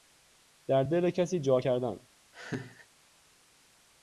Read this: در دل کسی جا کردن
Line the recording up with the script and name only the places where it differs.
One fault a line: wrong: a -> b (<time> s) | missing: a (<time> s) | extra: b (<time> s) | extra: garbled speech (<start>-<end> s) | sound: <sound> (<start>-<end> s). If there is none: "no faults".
sound: laugh (2.3-2.9 s)